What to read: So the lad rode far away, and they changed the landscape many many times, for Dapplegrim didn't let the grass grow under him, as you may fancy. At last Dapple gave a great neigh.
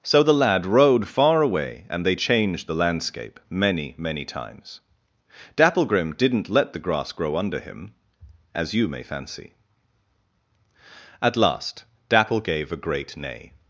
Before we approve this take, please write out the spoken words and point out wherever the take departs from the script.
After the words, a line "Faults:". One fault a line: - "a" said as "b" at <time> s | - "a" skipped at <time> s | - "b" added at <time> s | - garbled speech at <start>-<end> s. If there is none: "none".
So the lad rode far away, and they changed the landscape many many times, Dapplegrim didn't let the grass grow under him, as you may fancy. At last Dapple gave a great neigh.
Faults:
- "for" skipped at 4.8 s